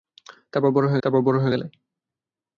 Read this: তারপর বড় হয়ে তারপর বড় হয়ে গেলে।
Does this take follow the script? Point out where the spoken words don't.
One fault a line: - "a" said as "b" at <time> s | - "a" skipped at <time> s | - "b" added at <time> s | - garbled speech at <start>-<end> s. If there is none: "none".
none